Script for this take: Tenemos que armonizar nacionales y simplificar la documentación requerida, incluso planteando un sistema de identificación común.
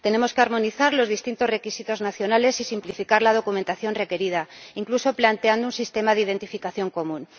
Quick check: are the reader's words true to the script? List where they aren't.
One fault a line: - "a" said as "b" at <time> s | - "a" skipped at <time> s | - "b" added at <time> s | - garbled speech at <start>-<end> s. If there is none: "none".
- "los distintos requisitos" added at 0.9 s